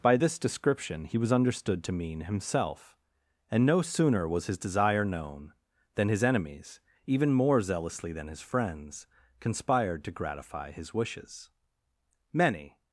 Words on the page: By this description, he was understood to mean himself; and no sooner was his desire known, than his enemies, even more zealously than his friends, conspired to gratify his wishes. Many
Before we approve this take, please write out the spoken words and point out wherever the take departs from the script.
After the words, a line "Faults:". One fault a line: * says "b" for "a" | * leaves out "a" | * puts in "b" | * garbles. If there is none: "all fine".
By this description, he was understood to mean himself; and no sooner was his desire known, than his enemies, even more zealously than his friends, conspired to gratify his wishes. Many
Faults:
all fine